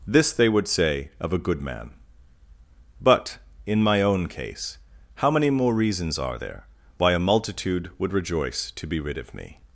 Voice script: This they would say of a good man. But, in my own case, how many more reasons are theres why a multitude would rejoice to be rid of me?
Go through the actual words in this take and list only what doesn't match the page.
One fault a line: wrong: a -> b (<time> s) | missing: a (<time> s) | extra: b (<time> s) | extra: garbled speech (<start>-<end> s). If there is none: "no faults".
wrong: theres -> there (6.4 s)